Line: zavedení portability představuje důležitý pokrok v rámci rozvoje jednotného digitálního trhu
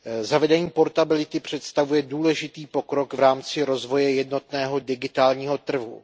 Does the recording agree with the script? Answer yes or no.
yes